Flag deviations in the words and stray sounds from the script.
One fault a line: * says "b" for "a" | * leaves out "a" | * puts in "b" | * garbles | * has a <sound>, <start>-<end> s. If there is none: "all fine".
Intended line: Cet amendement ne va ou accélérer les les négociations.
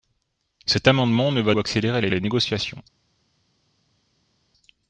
all fine